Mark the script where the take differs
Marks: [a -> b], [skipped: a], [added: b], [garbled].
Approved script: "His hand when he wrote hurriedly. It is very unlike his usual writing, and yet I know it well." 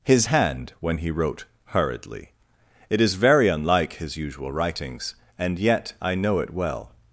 "His hand when he wrote hurriedly. It is very unlike his usual [writing, -> writings] and yet I know it well."